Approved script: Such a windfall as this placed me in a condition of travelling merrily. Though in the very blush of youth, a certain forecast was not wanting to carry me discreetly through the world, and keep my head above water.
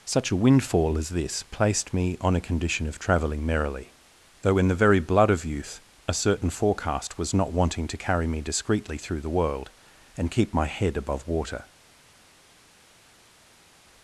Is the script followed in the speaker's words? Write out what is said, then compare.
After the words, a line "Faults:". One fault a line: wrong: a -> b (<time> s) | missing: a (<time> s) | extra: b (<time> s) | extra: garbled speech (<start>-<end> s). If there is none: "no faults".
Such a windfall as this placed me on a condition of travelling merrily. Though in the very blood of youth, a certain forecast was not wanting to carry me discreetly through the world, and keep my head above water.
Faults:
wrong: in -> on (2.2 s)
wrong: blush -> blood (5.0 s)